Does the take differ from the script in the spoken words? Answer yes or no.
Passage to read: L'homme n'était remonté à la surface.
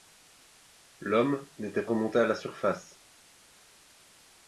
no